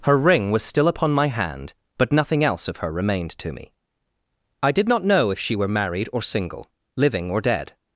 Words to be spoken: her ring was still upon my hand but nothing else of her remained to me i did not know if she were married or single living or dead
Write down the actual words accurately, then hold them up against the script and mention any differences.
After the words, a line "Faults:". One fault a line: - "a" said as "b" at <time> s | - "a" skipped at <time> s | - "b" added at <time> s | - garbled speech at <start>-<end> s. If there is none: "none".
her ring was still upon my hand but nothing else of her remained to me i did not know if she were married or single living or dead
Faults:
none